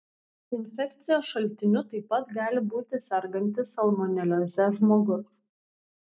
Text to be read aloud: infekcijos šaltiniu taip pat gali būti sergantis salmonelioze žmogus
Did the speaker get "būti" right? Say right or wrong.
right